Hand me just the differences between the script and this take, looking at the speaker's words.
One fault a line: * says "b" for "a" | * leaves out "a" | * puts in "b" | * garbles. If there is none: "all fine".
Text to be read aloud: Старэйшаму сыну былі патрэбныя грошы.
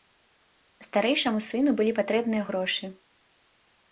all fine